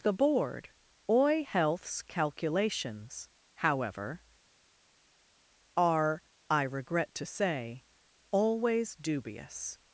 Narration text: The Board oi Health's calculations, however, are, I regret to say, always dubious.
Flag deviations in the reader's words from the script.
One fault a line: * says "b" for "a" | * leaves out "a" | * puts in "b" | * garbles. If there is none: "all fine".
all fine